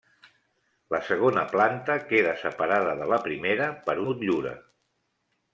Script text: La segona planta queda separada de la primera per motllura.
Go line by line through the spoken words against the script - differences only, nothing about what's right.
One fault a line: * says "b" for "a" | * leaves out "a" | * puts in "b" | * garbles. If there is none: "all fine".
all fine